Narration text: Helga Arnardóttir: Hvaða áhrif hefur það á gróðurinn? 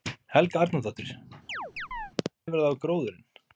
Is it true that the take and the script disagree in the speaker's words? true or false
true